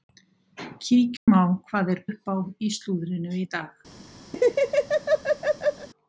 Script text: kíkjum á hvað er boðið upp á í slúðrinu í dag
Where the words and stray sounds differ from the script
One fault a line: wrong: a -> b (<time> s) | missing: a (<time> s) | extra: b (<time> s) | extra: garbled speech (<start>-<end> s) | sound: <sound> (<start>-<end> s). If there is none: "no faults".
sound: dropout (1.2-1.3 s)
missing: boðið (2.0 s)
sound: laugh (4.3-5.9 s)